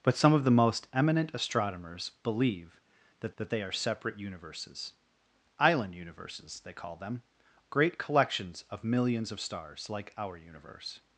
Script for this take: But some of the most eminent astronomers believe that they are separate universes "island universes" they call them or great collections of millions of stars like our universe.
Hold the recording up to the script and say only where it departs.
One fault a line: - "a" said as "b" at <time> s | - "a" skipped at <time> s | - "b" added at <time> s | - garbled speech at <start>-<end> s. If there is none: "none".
- "that" added at 3.4 s
- "or" skipped at 7.2 s